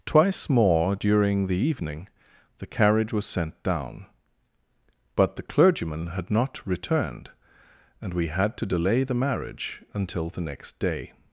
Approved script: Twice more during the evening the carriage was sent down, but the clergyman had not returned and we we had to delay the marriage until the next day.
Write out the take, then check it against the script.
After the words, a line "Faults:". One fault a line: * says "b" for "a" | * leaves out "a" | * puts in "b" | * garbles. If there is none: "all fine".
Twice more during the evening the carriage was sent down, but the clergyman had not returned and we had to delay the marriage until the next day.
Faults:
* leaves out "we"